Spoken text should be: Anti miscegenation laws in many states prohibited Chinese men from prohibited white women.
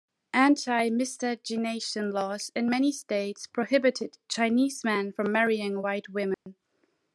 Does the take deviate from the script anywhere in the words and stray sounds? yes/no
yes